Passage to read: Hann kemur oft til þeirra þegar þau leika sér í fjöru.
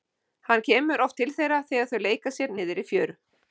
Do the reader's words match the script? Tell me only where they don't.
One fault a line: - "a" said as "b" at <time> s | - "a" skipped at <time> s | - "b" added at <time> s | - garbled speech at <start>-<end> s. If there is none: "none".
- "niðri" added at 2.6 s